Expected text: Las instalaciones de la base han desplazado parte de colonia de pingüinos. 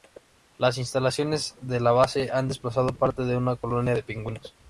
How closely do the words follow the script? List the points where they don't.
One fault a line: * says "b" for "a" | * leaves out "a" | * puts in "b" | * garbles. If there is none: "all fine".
* puts in "una"